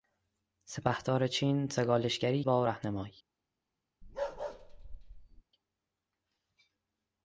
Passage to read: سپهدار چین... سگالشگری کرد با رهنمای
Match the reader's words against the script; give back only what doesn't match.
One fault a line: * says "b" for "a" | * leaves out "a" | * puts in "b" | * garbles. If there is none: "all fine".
* leaves out "کرد"